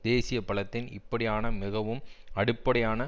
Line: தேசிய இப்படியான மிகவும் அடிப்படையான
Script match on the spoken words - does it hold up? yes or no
no